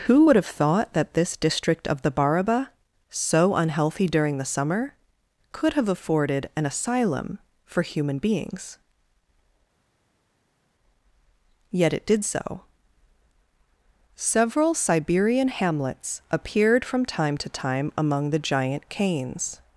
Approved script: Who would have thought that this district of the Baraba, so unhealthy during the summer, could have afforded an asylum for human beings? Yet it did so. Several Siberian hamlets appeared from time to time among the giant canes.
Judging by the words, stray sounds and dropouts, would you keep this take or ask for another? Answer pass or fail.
pass